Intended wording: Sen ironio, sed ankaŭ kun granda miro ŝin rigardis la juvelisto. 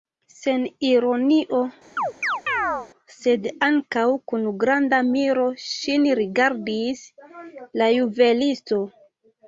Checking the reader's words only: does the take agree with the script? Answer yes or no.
yes